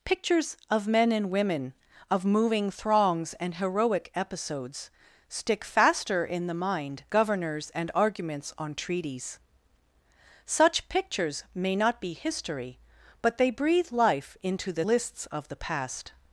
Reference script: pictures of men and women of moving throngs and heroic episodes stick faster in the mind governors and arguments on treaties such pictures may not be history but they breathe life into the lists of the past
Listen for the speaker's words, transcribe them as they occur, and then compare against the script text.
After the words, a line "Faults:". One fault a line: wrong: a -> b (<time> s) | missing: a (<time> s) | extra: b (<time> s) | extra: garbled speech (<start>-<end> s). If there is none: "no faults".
pictures of men and women of moving throngs and heroic episodes stick faster in the mind governors and arguments on treaties such pictures may not be history but they breathe life into the lists of the past
Faults:
no faults